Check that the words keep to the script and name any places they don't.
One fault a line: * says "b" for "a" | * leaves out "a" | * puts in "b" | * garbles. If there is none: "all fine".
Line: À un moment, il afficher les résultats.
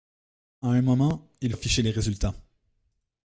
all fine